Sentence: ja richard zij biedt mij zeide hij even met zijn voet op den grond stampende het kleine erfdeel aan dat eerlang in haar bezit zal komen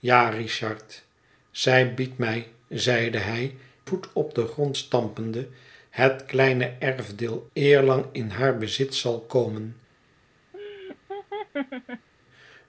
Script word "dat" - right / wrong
wrong